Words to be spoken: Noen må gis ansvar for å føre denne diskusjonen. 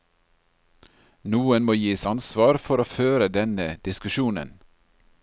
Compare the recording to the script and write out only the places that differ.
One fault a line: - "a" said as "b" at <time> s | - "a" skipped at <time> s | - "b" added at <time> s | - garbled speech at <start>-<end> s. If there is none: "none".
none